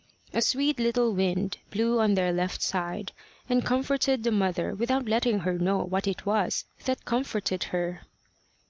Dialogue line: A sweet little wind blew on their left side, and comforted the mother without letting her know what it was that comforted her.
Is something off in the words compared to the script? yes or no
no